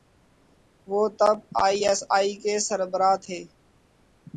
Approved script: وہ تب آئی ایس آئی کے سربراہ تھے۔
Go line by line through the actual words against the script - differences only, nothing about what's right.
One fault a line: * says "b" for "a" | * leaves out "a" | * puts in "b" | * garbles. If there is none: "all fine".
all fine